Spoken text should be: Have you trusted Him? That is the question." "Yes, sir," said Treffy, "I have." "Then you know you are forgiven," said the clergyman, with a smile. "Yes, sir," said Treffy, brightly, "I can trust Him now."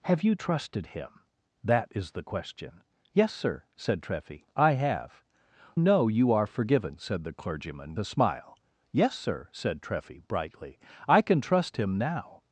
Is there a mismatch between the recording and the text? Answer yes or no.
yes